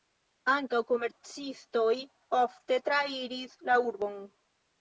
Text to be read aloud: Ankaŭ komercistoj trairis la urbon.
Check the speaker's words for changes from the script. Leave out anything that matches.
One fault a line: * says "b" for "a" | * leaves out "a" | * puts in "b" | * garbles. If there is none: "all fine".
* puts in "ofte"